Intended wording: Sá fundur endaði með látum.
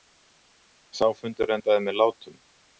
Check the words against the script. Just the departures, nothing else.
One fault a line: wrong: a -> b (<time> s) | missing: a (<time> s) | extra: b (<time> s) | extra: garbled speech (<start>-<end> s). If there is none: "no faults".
no faults